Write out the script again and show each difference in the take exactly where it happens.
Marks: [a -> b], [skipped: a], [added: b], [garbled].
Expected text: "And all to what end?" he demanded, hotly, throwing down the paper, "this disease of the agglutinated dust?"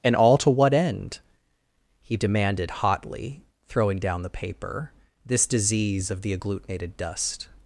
"And all to what end?" he demanded, hotly, throwing down the paper, "this disease of the agglutinated dust?"